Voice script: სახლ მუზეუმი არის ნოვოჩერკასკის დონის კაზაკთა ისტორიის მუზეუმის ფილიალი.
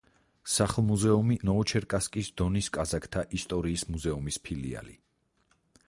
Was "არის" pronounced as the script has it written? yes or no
no